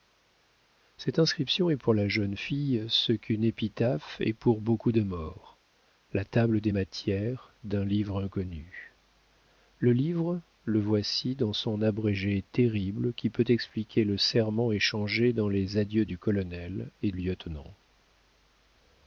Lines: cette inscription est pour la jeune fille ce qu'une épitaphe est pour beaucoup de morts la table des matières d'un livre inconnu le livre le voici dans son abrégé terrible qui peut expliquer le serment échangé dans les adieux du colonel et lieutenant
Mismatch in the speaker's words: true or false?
false